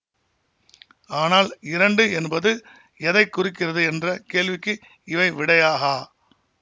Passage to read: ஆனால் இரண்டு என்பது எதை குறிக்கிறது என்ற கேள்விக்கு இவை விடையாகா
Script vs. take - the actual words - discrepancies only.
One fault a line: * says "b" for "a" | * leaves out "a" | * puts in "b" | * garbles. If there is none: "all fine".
all fine